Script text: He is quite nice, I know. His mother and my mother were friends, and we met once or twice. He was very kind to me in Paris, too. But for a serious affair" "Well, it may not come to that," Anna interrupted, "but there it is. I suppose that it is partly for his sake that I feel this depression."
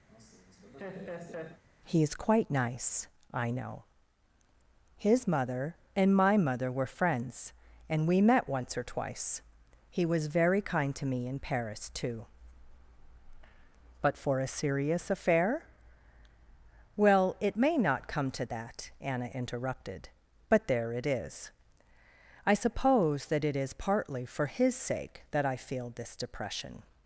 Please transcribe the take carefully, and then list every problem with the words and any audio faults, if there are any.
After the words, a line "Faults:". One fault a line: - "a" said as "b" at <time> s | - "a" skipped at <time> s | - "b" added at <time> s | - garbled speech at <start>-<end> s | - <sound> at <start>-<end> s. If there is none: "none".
He is quite nice, I know. His mother and my mother were friends, and we met once or twice. He was very kind to me in Paris, too. But for a serious affair" "Well, it may not come to that," Anna interrupted, "but there it is. I suppose that it is partly for his sake that I feel this depression."
Faults:
- laugh at 0.1-1.6 s